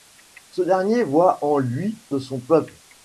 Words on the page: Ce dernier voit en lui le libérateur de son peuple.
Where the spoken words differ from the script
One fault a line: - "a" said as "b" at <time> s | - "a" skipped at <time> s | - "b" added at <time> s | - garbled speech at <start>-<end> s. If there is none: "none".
- "le libérateur" skipped at 2.0 s